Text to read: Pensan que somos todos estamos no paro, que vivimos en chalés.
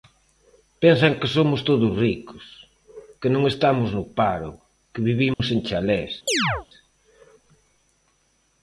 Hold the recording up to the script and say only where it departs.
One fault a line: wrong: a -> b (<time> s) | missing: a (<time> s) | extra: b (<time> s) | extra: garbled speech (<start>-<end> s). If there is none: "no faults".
extra: ricos que non (2.0 s)